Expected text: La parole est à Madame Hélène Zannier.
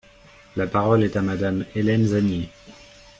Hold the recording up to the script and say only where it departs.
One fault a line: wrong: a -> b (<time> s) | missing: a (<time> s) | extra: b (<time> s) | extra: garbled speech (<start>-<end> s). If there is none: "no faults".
no faults